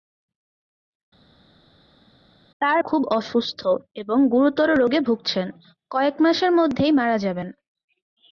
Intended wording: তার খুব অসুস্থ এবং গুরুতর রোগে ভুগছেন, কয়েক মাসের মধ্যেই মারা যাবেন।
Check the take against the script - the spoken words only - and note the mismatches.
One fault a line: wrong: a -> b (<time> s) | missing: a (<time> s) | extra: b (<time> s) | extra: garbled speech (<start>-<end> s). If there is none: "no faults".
no faults